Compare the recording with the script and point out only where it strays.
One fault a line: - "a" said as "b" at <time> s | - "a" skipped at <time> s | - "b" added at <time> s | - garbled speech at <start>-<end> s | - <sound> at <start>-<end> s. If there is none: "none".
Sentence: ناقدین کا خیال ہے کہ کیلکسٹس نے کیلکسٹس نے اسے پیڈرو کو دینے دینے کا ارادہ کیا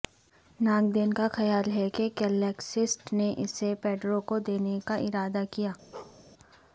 - "کیلکسٹس نے" skipped at 3.3 s
- "دینے" skipped at 4.8 s
- bark at 5.9-6.2 s